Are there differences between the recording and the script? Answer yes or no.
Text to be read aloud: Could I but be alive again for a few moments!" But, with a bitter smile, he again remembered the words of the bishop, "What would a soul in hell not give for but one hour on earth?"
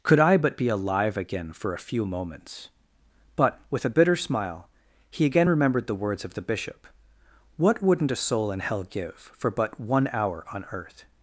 yes